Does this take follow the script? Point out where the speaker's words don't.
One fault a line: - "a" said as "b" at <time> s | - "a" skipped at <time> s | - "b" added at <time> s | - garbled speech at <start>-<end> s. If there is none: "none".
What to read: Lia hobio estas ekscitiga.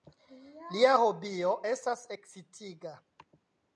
none